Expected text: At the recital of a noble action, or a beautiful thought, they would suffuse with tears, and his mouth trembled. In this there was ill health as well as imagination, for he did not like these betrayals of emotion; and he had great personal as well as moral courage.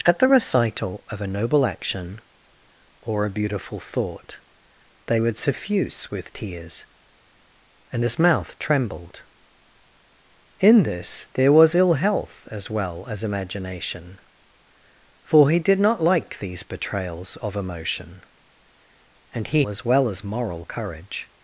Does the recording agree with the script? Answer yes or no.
no